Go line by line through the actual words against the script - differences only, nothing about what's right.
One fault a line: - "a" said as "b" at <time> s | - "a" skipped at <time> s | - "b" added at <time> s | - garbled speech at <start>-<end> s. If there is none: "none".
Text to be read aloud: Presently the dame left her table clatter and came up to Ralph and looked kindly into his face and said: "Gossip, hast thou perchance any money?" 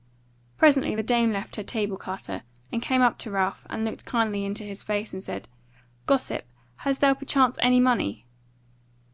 none